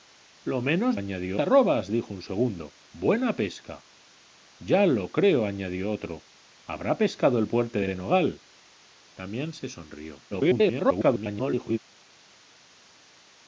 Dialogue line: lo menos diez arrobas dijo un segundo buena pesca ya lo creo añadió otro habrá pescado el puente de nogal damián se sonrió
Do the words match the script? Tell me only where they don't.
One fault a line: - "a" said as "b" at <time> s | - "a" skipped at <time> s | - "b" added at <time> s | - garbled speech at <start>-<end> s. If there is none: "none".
- "diez" said as "añadió" at 1.0 s
- "de" added at 7.8 s
- garbled speech at 10.3-11.8 s